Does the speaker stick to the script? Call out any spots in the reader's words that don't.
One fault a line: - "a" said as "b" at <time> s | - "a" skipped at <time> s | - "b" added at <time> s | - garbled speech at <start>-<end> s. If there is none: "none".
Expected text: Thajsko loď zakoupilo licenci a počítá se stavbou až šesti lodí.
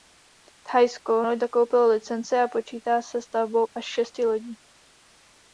none